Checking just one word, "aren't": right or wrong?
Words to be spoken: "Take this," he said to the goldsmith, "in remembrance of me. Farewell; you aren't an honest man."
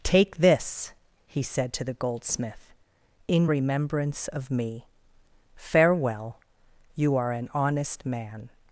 wrong